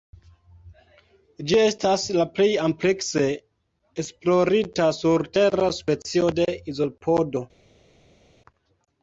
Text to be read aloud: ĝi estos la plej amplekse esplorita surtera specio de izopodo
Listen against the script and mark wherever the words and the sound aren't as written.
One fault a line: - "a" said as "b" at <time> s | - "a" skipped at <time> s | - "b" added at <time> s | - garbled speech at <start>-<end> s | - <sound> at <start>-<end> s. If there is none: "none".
- "estos" said as "estas" at 1.6 s